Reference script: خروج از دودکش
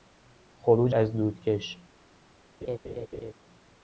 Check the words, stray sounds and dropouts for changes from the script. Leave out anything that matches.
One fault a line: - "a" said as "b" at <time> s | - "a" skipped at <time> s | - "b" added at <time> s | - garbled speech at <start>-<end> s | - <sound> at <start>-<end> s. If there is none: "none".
- laugh at 2.6-3.3 s